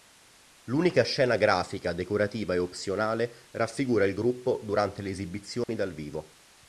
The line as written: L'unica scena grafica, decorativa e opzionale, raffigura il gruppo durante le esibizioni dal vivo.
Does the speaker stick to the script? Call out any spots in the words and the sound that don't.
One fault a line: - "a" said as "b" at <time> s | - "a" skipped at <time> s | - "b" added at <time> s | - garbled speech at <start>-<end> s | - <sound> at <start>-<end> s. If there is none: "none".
- dropout at 5.6-5.7 s